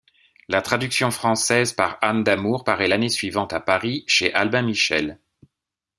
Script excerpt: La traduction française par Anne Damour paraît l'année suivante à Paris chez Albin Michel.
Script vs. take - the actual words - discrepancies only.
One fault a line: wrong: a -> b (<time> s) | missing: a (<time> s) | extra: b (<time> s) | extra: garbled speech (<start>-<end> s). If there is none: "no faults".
no faults